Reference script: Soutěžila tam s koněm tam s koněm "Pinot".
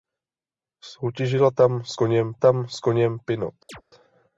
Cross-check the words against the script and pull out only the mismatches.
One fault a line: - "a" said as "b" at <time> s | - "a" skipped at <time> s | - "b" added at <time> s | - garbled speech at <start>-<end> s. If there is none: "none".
none